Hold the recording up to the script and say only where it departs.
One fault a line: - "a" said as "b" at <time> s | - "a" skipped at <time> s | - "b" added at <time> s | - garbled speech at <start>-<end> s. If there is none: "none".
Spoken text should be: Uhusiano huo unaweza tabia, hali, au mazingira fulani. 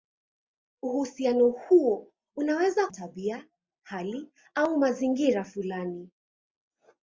none